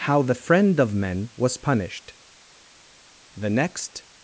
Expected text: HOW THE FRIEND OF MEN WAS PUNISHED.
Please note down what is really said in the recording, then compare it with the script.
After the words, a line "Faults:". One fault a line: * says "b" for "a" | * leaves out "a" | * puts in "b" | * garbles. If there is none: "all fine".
HOW THE FRIEND OF MEN WAS PUNISHED. The next
Faults:
* puts in "The next"